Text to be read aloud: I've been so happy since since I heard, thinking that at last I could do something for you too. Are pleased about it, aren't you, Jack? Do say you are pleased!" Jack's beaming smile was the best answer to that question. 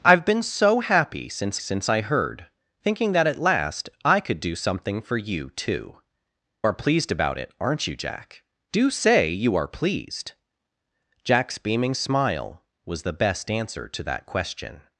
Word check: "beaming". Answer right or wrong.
right